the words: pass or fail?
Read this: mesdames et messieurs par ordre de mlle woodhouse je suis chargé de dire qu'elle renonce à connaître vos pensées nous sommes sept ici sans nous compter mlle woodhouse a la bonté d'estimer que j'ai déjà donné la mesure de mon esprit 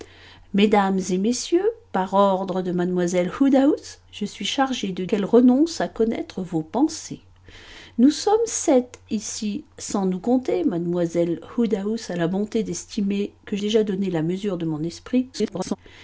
fail